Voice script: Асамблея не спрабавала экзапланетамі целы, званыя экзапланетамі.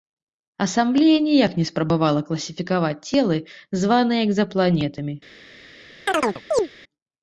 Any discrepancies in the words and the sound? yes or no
yes